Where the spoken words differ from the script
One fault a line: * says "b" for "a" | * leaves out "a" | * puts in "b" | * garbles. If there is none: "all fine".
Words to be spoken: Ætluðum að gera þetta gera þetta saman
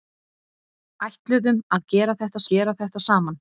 all fine